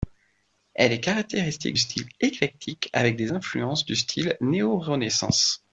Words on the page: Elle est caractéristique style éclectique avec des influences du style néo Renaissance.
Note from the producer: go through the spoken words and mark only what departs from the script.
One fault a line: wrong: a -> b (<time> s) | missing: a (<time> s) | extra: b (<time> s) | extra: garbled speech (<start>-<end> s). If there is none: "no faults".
no faults